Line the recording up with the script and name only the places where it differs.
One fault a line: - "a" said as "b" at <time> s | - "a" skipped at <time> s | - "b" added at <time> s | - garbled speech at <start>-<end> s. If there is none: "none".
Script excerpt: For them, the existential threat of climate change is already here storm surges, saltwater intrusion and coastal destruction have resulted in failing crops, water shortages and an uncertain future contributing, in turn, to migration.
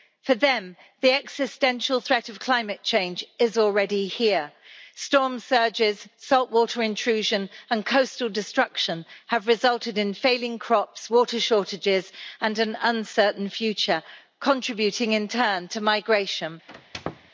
none